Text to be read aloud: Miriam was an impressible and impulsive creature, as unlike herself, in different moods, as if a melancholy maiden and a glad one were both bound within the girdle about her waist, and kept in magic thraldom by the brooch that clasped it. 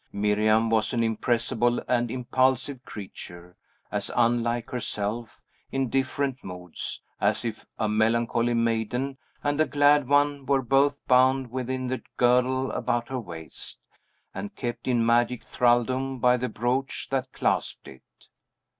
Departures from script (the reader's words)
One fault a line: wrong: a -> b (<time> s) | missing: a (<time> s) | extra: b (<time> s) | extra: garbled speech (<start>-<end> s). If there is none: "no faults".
no faults